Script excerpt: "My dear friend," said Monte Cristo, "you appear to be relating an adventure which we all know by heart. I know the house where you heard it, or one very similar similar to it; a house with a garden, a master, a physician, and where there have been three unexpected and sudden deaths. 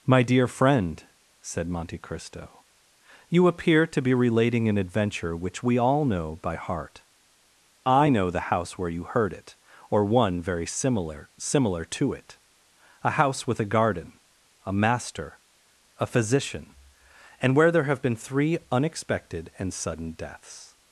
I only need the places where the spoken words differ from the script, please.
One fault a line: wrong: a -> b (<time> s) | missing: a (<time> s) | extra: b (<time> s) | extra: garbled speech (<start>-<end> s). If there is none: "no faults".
no faults